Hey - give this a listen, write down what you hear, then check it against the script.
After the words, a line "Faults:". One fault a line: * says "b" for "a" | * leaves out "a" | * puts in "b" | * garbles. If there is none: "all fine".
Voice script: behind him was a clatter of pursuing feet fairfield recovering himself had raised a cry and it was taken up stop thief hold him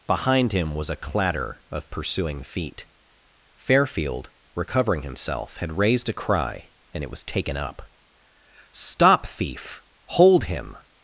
behind him was a clatter of pursuing feet fairfield recovering himself had raised a cry and it was taken up stop thief hold him
Faults:
all fine